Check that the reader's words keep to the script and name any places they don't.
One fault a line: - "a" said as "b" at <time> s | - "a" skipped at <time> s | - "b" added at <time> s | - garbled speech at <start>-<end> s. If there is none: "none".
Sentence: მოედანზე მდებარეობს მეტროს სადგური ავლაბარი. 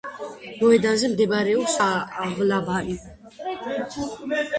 - "მეტროს სადგური" skipped at 1.8 s